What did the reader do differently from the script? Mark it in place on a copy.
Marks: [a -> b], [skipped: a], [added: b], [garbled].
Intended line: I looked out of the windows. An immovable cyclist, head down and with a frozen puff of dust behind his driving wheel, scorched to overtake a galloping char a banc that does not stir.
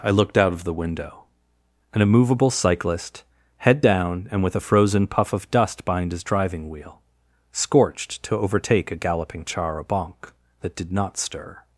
I looked out of the [windows. -> window] An immovable cyclist, head down and with a frozen puff of dust behind his driving wheel, scorched to overtake a galloping char a banc that [does -> did] not stir.